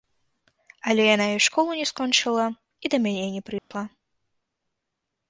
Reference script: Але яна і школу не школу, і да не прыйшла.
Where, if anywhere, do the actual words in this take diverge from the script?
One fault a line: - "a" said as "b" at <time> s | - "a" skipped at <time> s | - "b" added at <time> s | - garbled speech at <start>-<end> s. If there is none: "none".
- "школу" said as "скончыла" at 1.9 s
- "мяне" added at 3.1 s